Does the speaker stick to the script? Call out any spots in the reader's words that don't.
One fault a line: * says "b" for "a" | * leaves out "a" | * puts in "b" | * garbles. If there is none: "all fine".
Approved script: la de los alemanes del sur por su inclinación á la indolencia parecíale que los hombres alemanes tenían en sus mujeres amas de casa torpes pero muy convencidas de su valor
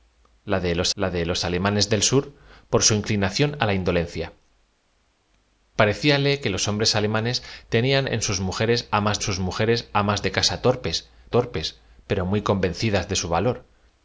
* puts in "la de los"
* puts in "sus mujeres amas"
* puts in "torpes"